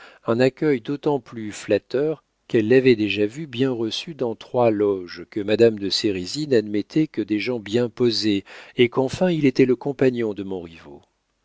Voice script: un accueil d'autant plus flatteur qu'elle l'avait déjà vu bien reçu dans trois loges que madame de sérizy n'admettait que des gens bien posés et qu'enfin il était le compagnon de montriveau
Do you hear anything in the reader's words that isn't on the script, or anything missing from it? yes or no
no